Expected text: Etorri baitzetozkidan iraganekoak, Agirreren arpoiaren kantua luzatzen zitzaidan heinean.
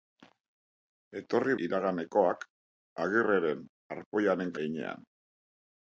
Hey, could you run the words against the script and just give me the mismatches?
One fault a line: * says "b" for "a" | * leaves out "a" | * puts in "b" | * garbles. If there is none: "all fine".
* leaves out "baitzetozkidan"
* leaves out "kantua luzatzen zitzaidan"